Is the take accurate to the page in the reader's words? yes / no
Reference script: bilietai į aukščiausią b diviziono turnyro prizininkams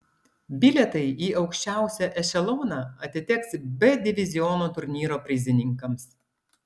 no